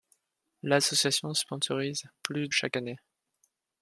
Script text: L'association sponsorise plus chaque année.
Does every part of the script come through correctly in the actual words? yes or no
yes